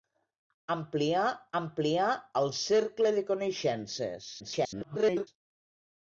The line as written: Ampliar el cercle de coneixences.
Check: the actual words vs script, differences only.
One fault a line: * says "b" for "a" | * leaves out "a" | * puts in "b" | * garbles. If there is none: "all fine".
* puts in "ampliar"
* garbles